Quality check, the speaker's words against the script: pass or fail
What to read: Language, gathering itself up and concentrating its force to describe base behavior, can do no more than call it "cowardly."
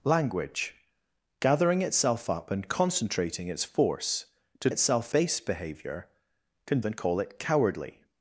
fail